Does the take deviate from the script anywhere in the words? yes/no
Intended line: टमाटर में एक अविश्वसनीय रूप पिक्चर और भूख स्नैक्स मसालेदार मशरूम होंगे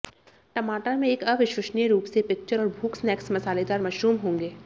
yes